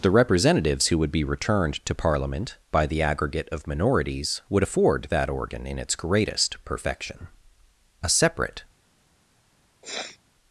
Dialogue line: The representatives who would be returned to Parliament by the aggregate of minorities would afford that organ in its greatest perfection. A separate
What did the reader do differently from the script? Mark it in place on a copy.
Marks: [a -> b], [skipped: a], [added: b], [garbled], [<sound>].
The representatives who would be returned to Parliament by the aggregate of minorities would afford that organ in its greatest perfection. A separate [sniff]